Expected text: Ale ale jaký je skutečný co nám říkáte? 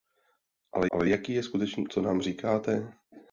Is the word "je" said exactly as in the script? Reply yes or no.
yes